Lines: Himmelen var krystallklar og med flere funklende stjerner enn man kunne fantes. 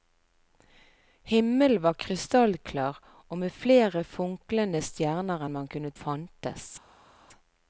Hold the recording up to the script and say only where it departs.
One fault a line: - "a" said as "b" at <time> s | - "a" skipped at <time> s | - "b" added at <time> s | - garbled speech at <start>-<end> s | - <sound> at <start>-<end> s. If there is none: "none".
none